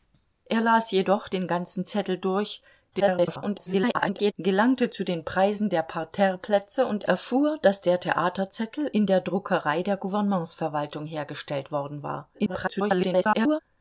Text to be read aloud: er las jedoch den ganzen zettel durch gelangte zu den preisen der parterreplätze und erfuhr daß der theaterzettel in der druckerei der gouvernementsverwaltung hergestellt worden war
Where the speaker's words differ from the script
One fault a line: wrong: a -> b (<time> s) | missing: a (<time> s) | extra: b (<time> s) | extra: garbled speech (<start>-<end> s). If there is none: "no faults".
extra: garbled speech (2.9-4.3 s)
extra: garbled speech (12.3-13.6 s)